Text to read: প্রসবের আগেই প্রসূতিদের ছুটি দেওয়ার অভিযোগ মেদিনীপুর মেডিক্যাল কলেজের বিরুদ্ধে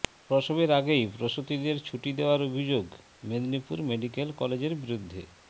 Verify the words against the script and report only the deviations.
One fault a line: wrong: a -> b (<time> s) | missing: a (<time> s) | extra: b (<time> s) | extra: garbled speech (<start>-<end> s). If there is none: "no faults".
no faults